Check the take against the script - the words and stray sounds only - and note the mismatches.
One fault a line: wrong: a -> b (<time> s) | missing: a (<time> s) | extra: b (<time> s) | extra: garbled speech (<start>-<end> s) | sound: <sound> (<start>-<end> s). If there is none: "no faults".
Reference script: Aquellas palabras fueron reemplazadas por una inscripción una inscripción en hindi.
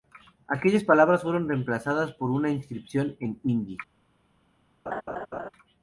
missing: una inscripción (3.2 s)
sound: laugh (4.9-5.5 s)